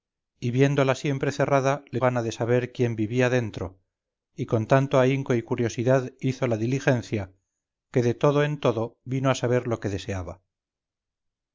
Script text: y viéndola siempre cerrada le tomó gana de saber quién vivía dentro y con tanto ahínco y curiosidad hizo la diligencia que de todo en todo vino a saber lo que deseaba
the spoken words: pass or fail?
fail